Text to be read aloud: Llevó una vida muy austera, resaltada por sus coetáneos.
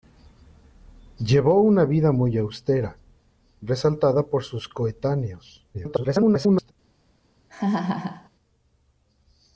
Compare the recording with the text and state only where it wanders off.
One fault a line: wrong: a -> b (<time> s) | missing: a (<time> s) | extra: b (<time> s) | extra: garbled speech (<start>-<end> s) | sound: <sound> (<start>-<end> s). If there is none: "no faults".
extra: garbled speech (5.7-6.7 s)
sound: laugh (7.5-8.3 s)